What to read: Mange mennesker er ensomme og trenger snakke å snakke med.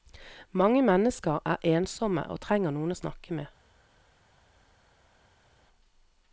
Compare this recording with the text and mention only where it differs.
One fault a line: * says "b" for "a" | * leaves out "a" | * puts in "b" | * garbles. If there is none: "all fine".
* says "noen" for "snakke"